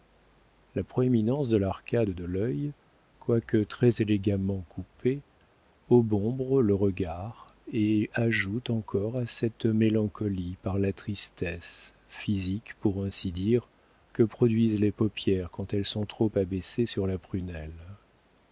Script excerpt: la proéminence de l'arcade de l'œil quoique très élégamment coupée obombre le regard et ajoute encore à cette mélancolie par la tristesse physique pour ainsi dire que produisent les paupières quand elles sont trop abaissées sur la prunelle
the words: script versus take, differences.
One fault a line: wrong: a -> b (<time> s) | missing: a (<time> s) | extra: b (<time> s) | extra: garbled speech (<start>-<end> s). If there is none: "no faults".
no faults